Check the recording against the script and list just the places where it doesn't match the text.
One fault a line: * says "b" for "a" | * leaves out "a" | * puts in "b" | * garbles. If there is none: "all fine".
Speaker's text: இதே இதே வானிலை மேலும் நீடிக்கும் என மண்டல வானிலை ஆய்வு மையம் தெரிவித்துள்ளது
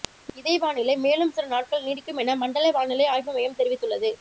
* leaves out "இதே"
* puts in "சில நாட்கள்"